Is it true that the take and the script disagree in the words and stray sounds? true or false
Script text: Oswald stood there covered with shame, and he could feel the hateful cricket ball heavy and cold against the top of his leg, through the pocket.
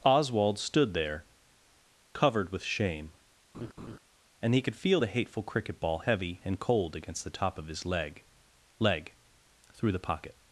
true